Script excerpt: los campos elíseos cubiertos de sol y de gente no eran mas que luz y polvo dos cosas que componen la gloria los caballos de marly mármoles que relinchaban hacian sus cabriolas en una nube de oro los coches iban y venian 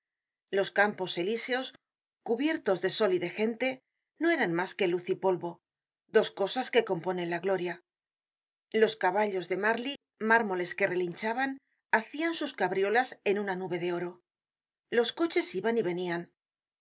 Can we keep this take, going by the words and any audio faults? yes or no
yes